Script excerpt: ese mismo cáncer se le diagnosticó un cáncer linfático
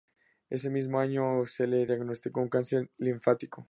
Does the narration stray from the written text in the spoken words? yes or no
yes